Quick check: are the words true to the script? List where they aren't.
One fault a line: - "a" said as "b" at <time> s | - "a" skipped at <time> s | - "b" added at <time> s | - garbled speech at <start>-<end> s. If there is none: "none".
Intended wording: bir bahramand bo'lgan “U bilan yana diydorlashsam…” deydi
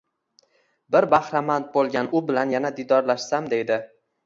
none